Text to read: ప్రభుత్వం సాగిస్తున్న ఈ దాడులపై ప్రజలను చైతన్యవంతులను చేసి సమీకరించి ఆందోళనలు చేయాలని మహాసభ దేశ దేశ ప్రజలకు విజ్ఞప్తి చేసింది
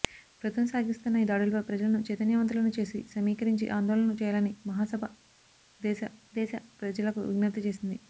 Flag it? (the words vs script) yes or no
no